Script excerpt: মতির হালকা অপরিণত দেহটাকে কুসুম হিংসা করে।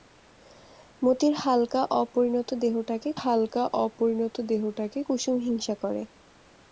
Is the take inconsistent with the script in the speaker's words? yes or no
yes